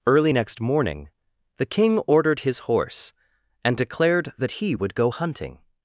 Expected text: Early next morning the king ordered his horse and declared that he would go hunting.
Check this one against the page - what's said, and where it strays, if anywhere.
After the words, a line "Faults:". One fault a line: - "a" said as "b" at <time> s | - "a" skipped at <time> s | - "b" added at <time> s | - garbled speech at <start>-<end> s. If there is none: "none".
Early next morning the king ordered his horse and declared that he would go hunting.
Faults:
none